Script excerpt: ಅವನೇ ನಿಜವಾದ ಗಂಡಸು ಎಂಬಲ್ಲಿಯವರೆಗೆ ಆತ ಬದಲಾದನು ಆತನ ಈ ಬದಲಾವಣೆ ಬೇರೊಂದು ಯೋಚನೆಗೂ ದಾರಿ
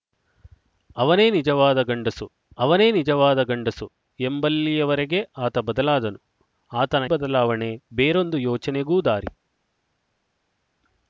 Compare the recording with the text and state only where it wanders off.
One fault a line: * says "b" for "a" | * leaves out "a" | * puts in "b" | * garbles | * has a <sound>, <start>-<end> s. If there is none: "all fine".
* puts in "ಅವನೇ ನಿಜವಾದ ಗಂಡಸು"
* leaves out "ಈ"